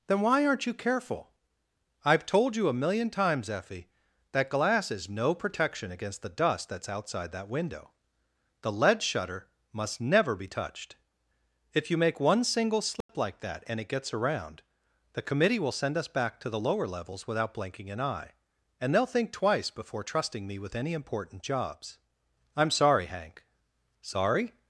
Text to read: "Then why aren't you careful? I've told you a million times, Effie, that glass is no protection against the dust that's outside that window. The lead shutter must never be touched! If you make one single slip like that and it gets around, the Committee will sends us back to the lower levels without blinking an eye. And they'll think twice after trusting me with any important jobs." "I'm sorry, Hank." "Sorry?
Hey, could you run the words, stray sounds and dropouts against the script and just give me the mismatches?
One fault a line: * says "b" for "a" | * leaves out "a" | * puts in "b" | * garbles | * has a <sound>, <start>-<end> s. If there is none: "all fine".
* has a dropout, 13.0-13.1 s
* says "send" for "sends"
* says "before" for "after"